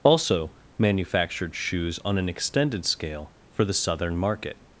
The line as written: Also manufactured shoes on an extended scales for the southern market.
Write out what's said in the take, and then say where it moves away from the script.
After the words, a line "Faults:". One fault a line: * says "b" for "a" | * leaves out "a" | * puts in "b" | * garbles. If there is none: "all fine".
Also manufactured shoes on an extended scale for the southern market.
Faults:
* says "scale" for "scales"